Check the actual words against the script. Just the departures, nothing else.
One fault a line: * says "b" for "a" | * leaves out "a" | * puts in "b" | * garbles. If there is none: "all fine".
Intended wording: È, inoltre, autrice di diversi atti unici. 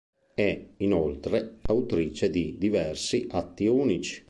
all fine